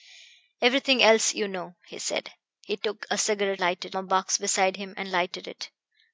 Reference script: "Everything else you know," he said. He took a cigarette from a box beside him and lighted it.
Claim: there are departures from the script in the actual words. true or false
true